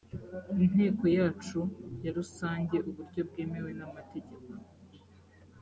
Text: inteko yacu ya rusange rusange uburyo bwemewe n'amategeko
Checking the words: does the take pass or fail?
fail